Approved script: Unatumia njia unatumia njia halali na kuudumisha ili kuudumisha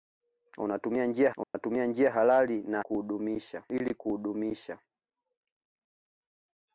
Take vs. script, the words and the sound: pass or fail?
fail